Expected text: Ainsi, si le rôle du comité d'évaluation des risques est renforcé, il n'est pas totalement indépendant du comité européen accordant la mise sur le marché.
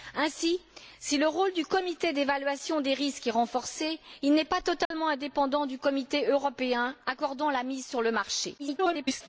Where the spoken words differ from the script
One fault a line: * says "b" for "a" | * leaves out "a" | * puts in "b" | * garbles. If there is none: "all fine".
* garbles